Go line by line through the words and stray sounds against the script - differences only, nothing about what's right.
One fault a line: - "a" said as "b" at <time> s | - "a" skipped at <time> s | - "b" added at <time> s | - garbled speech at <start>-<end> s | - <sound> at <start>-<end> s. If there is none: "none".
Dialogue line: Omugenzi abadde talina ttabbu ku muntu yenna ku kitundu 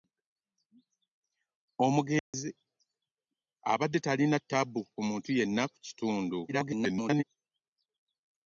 - dropout at 2.2-2.3 s
- garbled speech at 6.5-7.2 s